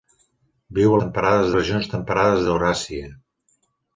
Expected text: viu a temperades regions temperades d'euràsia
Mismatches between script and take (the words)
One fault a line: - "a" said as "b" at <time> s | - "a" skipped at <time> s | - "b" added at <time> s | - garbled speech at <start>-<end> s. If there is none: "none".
none